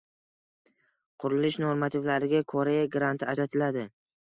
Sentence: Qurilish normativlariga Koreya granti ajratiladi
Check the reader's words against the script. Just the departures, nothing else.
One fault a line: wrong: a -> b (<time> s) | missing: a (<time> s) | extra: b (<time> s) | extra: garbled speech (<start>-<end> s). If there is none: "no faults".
no faults